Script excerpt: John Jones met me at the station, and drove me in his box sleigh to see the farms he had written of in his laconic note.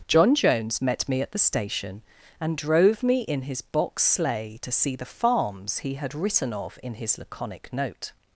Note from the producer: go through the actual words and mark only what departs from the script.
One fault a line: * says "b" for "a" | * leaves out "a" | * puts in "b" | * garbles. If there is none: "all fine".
all fine